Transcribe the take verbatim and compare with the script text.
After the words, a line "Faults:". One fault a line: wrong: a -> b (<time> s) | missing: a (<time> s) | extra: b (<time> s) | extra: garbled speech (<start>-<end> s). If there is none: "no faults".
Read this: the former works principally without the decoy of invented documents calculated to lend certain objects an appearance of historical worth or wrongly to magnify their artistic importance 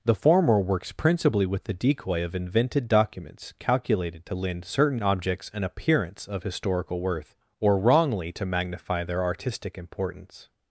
the former works principally with the decoy of invented documents calculated to lend certain objects an appearance of historical worth or wrongly to magnify their artistic importance
Faults:
wrong: without -> with (1.4 s)